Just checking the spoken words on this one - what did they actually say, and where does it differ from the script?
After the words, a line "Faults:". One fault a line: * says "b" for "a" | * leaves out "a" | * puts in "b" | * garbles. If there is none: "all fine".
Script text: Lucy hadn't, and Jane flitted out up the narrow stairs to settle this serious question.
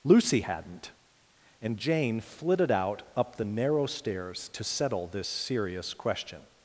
Lucy hadn't, and Jane flitted out up the narrow stairs to settle this serious question.
Faults:
all fine